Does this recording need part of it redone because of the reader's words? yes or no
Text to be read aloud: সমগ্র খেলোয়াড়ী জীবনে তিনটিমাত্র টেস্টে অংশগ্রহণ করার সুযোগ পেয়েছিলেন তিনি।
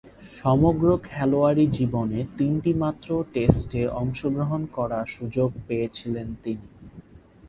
no